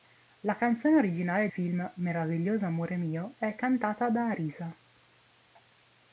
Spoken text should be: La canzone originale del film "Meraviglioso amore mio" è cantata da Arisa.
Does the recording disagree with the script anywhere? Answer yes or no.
yes